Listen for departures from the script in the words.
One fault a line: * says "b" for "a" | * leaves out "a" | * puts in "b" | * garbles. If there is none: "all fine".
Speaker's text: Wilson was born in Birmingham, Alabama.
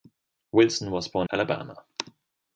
* leaves out "in Birmingham"